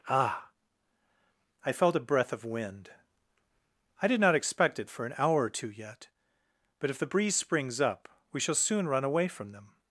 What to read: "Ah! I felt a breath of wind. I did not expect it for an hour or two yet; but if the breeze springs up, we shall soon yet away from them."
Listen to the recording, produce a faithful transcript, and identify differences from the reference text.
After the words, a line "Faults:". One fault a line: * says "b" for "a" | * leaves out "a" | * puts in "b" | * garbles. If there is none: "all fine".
"Ah! I felt a breath of wind. I did not expect it for an hour or two yet; but if the breeze springs up, we shall soon run away from them."
Faults:
* says "run" for "yet"